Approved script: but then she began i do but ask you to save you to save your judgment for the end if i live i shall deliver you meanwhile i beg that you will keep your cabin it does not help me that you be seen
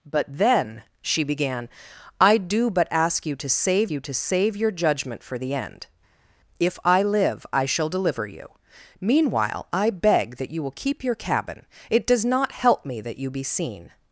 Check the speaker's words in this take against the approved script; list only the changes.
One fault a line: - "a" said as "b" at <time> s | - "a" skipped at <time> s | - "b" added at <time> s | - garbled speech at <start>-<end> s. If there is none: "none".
none